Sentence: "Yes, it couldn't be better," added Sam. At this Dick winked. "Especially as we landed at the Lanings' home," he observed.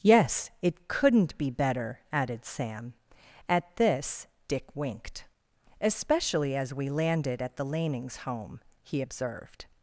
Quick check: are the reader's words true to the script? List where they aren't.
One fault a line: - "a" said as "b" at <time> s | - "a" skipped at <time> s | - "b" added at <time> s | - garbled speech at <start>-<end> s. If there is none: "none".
none